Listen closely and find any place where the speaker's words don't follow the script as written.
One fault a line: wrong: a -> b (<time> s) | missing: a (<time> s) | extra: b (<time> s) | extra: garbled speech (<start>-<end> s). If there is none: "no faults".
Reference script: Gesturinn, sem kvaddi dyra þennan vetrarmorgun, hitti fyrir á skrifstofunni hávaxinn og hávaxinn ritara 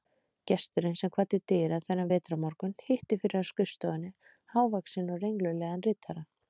wrong: hávaxinn -> renglulegan (5.3 s)